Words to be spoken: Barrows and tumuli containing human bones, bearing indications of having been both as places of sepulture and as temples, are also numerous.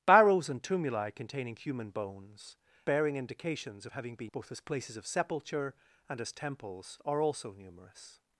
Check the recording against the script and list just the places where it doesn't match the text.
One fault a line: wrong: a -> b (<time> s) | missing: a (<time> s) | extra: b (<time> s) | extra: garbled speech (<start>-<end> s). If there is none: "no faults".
no faults